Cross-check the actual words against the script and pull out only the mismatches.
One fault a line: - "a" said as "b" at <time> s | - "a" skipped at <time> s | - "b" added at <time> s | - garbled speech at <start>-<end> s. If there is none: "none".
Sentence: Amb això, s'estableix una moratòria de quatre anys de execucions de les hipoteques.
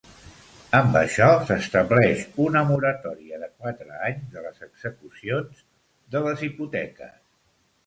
- "les" added at 4.4 s